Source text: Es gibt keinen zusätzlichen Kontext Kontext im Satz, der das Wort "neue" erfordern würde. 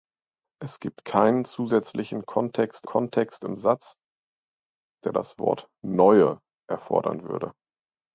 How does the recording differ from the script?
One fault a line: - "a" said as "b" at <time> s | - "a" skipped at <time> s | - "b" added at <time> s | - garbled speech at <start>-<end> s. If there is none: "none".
none